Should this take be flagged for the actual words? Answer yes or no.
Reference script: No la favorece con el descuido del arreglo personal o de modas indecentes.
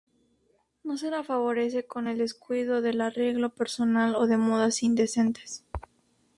yes